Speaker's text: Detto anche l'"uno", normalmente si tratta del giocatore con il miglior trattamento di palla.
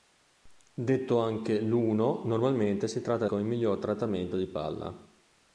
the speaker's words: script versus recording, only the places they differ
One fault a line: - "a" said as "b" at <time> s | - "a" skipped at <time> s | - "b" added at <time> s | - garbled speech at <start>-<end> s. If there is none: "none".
- "del giocatore" skipped at 3.2 s